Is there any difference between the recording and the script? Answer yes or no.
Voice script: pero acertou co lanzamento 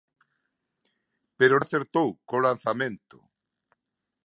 no